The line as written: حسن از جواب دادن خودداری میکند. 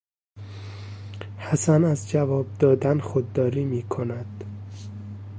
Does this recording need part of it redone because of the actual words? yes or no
no